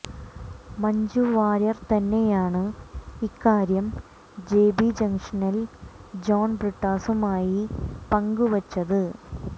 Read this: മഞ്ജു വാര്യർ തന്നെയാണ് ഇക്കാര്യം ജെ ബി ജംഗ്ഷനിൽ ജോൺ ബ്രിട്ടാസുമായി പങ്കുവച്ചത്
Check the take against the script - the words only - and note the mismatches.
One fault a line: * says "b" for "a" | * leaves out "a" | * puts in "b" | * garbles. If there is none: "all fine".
all fine